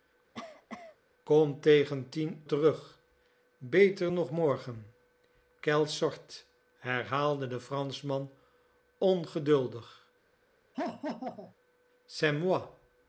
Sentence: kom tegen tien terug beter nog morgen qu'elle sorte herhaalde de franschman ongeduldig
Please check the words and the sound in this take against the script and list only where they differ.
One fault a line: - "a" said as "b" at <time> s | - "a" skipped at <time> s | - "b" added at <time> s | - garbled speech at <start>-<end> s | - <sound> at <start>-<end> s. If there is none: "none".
- cough at 0.3-1.0 s
- laugh at 10.7-11.5 s